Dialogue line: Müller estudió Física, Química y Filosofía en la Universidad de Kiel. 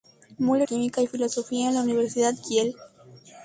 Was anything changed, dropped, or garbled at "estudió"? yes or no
yes